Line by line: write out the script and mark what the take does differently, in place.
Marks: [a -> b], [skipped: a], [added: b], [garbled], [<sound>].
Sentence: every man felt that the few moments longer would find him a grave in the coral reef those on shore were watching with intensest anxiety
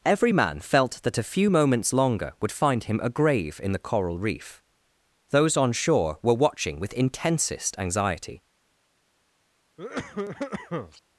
every man felt that [the -> a] few moments longer would find him a grave in the coral reef those on shore were watching with intensest anxiety [cough]